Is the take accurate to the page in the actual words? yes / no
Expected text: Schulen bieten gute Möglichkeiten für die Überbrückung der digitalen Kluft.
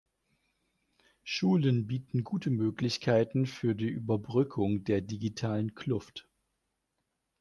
yes